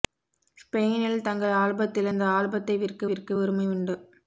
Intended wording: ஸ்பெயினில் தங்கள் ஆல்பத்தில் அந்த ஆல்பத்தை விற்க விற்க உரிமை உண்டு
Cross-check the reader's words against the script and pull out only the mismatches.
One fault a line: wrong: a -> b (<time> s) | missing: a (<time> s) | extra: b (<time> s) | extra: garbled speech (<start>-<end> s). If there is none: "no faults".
no faults